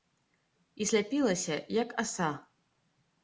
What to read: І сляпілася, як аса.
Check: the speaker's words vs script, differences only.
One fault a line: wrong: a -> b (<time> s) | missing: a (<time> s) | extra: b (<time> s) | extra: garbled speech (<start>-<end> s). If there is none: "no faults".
no faults